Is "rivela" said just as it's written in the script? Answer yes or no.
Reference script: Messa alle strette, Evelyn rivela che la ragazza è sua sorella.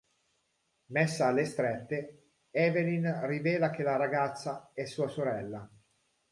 yes